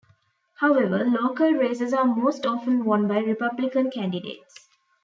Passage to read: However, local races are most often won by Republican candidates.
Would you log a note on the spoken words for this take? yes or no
no